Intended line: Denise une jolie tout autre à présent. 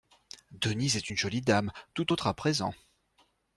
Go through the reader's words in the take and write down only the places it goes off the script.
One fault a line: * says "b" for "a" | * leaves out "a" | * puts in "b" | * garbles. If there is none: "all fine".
* puts in "est"
* puts in "dame"